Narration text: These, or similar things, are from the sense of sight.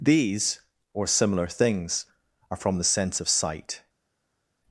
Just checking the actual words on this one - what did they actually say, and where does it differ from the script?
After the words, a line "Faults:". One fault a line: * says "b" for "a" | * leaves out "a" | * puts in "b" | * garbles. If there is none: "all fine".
These, or similar things, are from the sense of sight.
Faults:
all fine